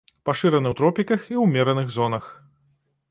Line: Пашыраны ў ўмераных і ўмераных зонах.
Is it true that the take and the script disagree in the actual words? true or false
true